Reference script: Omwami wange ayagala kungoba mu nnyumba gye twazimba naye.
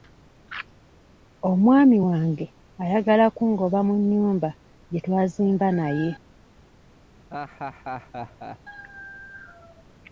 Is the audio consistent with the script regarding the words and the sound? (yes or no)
no